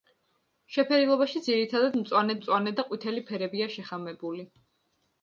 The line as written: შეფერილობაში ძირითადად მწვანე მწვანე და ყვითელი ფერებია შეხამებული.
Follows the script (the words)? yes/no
yes